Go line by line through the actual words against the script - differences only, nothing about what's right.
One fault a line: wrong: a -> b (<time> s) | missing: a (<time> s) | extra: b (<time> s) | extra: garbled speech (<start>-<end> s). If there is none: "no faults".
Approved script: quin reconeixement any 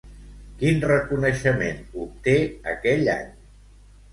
extra: obté aquell (2.1 s)